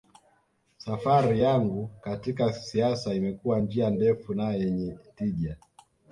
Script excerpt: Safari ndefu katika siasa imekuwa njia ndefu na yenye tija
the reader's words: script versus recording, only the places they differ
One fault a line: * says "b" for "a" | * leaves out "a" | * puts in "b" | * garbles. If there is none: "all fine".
* says "yangu" for "ndefu"